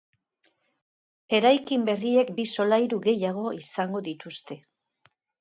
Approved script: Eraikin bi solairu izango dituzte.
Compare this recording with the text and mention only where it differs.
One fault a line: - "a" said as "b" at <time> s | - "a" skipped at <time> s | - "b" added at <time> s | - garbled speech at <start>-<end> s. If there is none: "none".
- "berriek" added at 1.9 s
- "gehiago" added at 3.1 s